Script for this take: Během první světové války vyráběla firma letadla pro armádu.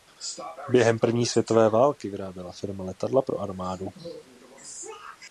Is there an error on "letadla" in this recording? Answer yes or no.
no